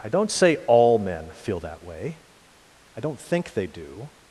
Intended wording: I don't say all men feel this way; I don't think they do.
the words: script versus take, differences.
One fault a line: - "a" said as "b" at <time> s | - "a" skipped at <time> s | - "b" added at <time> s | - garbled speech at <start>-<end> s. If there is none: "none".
- "this" said as "that" at 1.6 s